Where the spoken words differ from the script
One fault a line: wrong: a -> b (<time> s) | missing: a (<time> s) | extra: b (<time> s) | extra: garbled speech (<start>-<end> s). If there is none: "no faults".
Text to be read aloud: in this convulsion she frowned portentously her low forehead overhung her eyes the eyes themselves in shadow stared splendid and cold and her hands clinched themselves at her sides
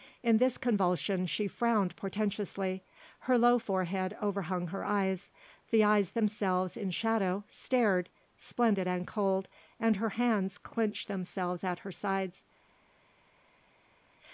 no faults